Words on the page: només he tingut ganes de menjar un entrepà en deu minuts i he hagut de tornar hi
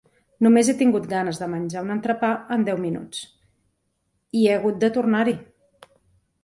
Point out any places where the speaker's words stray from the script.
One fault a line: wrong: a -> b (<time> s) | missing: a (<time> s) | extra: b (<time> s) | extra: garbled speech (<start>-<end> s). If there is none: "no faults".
no faults